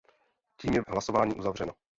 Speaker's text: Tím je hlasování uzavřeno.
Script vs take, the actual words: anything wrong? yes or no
no